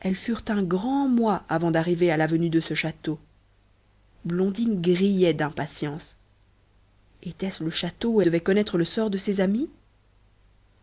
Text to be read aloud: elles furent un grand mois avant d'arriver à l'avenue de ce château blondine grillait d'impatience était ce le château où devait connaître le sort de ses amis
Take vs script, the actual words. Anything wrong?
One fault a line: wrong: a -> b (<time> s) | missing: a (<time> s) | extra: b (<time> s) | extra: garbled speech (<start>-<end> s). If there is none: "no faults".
no faults